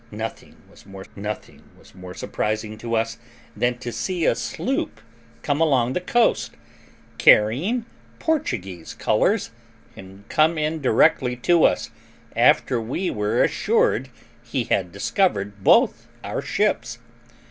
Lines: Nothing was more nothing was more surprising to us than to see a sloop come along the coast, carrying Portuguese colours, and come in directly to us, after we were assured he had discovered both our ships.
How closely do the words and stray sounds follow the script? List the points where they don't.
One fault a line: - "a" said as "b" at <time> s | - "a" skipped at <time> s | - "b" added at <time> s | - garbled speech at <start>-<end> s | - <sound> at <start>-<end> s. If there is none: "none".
none